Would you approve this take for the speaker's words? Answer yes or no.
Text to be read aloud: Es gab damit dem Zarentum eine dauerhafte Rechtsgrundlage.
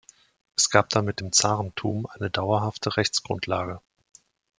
yes